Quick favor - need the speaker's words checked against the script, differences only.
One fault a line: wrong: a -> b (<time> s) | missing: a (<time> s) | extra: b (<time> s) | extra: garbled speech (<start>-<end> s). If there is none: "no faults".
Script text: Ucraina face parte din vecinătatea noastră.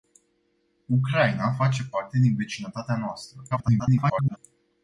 extra: garbled speech (3.5-4.4 s)